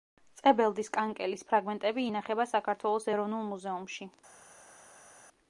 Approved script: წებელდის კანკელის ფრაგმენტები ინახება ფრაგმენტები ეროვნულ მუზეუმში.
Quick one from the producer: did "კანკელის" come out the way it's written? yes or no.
yes